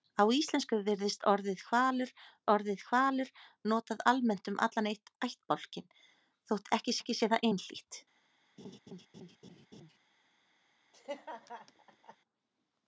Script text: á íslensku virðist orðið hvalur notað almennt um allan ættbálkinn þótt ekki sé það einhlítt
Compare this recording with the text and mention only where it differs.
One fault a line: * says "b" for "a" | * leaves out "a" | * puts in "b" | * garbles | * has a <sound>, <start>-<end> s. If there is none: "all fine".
* puts in "orðið hvalur"
* puts in "ekki"
* has a laugh, 8.6-10.0 s
* has a laugh, 10.9-12.2 s